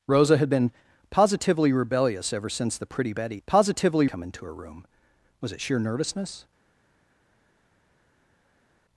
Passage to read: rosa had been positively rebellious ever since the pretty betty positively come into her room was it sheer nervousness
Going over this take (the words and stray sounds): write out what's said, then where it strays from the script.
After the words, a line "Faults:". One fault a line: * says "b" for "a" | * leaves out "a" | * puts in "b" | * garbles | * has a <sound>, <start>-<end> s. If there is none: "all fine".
rosa had been positively rebellious ever since the pretty betty positively come into her room was it sheer nervousness
Faults:
all fine